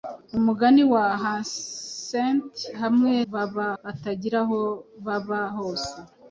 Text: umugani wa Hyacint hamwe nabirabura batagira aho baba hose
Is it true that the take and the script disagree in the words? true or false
true